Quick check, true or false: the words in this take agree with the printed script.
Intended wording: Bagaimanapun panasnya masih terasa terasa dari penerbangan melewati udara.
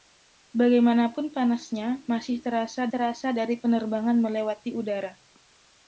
true